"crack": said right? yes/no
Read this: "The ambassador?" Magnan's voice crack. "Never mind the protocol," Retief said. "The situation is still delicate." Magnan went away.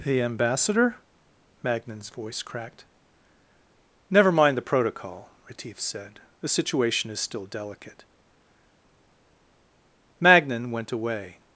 no